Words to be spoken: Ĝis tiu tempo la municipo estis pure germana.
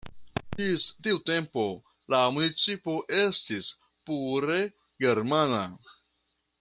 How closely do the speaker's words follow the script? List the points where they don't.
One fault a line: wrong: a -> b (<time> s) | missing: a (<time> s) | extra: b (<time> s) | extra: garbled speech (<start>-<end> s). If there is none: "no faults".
no faults